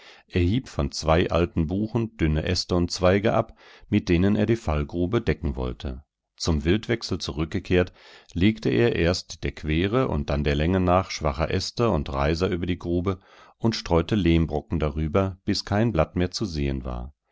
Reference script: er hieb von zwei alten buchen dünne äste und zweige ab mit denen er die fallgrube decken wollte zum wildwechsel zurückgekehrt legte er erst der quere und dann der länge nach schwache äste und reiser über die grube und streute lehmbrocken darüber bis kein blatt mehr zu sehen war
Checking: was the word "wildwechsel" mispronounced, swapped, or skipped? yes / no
no